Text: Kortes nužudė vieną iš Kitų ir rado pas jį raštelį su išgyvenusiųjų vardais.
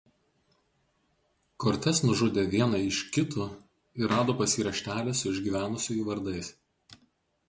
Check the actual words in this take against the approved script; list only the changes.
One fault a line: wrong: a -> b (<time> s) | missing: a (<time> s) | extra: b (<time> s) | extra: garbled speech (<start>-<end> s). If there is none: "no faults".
no faults